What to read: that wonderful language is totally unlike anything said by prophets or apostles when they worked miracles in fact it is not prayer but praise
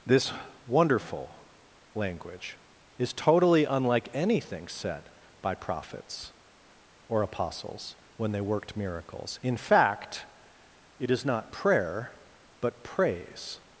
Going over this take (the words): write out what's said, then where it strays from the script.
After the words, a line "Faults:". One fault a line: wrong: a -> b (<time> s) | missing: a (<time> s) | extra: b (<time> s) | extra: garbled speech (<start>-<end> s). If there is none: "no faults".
this wonderful language is totally unlike anything said by prophets or apostles when they worked miracles in fact it is not prayer but praise
Faults:
wrong: that -> this (0.1 s)